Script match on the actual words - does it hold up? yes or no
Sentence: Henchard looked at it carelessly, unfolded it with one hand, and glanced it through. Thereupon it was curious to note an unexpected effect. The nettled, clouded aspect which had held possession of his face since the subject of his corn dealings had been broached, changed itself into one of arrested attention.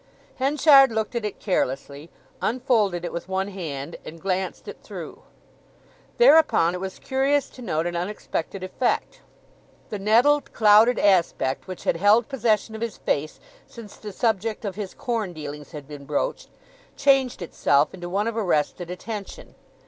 yes